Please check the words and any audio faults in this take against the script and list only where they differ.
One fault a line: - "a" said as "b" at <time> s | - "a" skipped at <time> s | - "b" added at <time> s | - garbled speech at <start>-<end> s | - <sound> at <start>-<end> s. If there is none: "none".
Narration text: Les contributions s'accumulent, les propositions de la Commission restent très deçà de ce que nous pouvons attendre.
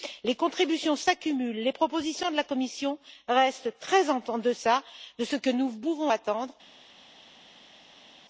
- "en" added at 4.1 s